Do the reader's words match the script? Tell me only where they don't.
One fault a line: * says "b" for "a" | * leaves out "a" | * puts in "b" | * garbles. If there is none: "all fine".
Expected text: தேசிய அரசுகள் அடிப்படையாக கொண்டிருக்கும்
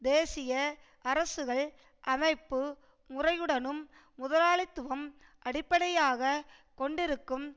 * puts in "அமைப்பு முறையுடனும் முதலாளித்துவம்"